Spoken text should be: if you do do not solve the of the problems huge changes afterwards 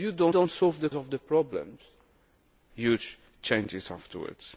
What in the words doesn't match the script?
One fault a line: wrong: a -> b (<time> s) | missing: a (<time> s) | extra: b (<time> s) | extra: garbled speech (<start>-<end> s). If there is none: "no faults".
no faults